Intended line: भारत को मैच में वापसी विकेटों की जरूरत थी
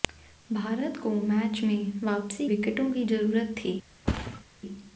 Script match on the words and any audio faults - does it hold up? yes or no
no